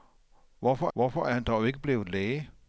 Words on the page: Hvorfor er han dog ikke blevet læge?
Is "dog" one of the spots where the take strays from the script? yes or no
no